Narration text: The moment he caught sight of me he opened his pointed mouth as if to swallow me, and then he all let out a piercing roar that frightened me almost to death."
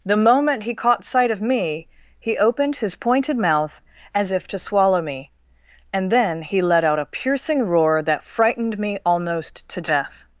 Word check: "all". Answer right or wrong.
wrong